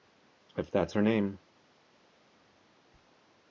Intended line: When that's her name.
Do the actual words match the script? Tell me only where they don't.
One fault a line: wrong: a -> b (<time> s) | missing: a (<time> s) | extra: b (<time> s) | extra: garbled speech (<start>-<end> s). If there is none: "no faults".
wrong: When -> If (0.6 s)